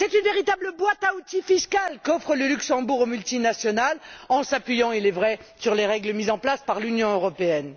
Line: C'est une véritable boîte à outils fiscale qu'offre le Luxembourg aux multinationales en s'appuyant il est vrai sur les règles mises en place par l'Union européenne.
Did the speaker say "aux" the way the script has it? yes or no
yes